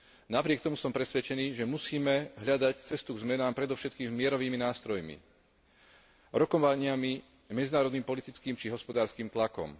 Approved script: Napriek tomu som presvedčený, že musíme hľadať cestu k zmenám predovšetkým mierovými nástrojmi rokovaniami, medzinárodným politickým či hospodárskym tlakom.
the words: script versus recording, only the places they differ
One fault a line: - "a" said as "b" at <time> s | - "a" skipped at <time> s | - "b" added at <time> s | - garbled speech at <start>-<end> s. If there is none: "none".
none